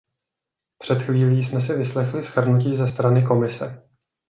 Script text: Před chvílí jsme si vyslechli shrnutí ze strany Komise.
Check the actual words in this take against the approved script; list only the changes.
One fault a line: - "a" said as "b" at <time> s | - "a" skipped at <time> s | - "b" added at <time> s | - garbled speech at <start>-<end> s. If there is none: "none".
none